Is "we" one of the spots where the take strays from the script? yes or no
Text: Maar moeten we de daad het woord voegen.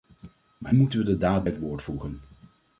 no